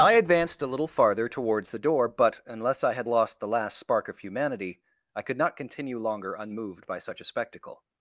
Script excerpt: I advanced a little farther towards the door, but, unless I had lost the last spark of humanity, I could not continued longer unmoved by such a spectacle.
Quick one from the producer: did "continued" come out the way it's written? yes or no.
no